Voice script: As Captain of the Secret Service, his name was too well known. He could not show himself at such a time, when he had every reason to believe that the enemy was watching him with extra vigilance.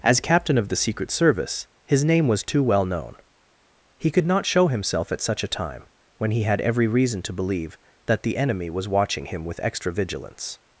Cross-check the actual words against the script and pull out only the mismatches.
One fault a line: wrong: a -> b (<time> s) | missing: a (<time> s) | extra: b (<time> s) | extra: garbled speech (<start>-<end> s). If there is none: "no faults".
no faults